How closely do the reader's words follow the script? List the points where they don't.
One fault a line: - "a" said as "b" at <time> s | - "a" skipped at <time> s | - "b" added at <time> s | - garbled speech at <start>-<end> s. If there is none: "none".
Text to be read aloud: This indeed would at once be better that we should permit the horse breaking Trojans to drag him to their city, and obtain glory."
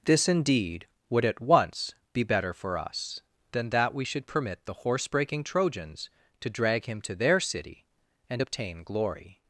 - "for us than" added at 2.5 s